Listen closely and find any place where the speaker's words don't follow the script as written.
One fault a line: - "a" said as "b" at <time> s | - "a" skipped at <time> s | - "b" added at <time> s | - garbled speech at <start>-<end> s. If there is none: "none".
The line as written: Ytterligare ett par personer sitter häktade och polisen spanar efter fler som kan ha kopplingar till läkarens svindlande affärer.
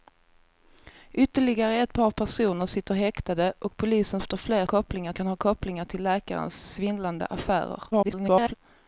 - "spanar" skipped at 4.2 s
- "som" said as "kopplingar" at 4.6 s
- garbled speech at 7.9-8.5 s